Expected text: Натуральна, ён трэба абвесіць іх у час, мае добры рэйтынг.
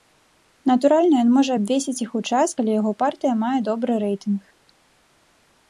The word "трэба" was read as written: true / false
false